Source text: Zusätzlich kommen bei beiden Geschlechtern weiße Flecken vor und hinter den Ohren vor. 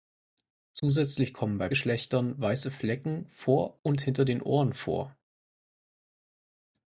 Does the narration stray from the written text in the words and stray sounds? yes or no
yes